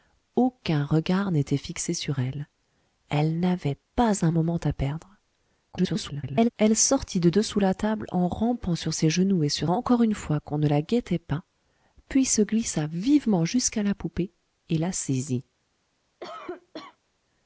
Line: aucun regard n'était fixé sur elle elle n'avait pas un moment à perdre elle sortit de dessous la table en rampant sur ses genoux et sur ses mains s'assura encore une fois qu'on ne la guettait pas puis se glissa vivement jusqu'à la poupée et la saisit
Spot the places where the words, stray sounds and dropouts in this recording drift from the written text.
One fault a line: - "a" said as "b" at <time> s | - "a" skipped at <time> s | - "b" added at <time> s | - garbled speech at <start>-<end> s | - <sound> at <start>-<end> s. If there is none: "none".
- garbled speech at 5.7-6.5 s
- "ses mains s'assura" skipped at 9.7 s
- cough at 16.2-17.0 s